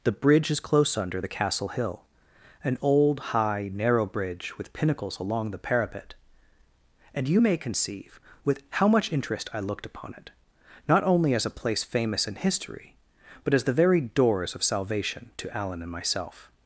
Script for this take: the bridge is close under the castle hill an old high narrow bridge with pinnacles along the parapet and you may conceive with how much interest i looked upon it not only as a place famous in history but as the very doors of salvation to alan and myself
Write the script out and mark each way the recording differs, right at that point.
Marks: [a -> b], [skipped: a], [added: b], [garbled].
the bridge is close under the castle hill an old high narrow bridge with pinnacles along the parapet and you may conceive with how much interest i looked upon it not only as a place famous in history but as the very doors of salvation to alan and myself